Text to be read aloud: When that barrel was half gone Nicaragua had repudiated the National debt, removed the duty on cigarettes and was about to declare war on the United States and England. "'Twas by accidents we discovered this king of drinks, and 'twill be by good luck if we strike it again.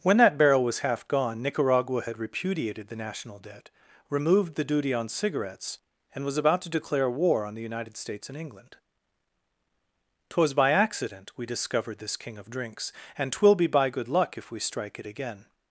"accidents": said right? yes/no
no